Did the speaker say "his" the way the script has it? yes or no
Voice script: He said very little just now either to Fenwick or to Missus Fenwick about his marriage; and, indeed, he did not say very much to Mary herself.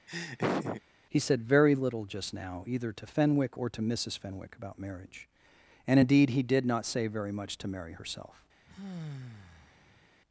no